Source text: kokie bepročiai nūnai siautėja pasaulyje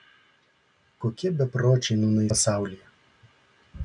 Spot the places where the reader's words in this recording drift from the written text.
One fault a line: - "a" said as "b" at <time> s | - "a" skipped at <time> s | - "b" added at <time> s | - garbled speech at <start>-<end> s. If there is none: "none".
- "siautėja" skipped at 2.3 s